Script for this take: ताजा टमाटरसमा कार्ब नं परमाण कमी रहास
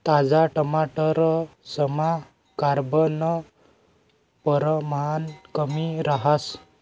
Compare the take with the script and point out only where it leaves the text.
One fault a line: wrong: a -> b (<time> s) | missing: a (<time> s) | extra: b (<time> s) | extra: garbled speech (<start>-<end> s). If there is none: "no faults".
no faults